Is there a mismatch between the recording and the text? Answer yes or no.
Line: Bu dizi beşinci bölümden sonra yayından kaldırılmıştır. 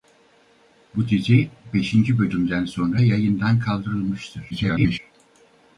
yes